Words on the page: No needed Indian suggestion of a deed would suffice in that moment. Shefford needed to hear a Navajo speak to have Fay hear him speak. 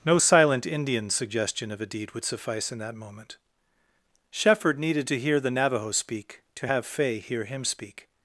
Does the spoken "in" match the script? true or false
true